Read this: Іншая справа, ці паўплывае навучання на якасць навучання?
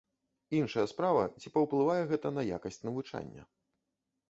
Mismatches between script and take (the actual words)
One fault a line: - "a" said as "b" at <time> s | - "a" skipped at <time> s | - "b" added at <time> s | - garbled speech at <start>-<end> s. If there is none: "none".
- "навучання" said as "гэта" at 2.1 s